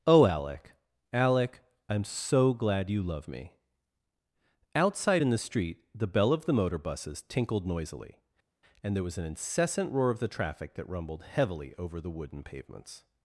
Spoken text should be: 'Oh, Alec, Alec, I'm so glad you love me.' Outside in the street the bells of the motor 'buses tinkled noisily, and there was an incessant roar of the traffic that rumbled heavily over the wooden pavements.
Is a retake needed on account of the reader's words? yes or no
yes